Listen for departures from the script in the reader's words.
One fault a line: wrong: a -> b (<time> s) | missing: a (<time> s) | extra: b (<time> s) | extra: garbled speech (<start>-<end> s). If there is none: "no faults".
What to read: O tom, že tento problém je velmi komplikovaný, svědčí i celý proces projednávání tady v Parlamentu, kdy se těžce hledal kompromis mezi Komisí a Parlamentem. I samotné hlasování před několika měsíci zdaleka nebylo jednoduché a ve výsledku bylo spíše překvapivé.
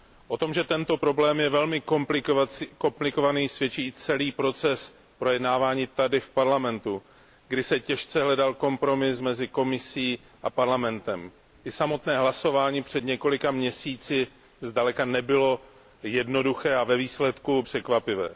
missing: bylo spíše (17.6 s)